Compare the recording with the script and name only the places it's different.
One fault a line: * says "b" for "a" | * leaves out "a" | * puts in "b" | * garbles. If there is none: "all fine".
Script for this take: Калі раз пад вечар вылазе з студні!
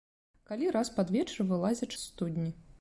all fine